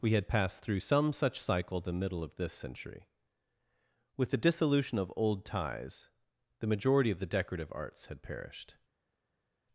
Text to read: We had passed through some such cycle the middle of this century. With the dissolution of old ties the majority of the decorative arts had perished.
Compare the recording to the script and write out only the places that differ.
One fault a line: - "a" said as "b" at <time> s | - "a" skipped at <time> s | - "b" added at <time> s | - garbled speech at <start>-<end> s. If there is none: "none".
none